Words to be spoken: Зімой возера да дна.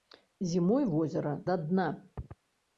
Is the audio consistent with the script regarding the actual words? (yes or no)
yes